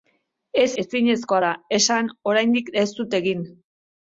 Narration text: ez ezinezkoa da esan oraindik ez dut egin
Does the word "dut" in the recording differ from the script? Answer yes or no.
no